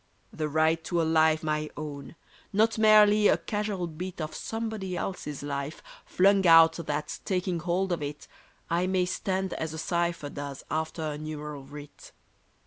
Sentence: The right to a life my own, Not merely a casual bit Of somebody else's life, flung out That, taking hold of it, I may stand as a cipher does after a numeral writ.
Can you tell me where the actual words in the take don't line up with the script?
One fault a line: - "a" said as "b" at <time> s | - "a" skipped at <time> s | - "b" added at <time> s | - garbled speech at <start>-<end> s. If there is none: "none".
none